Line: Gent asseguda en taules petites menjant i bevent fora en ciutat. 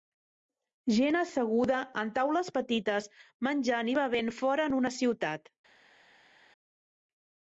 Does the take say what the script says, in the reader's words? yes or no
no